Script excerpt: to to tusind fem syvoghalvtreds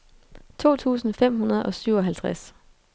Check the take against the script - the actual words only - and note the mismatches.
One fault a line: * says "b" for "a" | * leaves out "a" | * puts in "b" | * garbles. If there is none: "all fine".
* leaves out "to"
* puts in "hundrede og"